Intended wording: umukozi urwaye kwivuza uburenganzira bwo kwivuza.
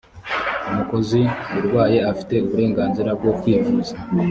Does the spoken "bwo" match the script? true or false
true